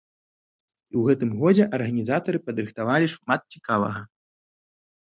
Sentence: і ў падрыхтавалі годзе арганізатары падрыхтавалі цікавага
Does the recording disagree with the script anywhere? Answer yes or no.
yes